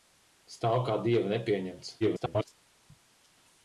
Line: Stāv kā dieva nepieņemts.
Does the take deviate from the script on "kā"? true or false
false